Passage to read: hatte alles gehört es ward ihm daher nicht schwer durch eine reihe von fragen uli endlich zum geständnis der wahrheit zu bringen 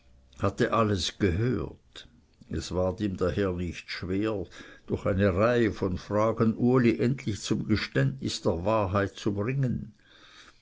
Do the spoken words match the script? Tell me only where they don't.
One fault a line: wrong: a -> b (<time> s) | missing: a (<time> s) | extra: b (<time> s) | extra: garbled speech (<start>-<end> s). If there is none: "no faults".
no faults